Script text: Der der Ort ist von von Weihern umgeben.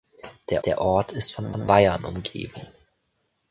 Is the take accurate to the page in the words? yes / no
yes